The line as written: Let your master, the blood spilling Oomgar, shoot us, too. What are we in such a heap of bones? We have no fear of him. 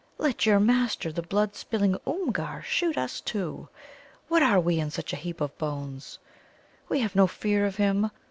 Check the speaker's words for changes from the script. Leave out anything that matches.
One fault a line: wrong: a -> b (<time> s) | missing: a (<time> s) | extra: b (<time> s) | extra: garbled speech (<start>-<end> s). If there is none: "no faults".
no faults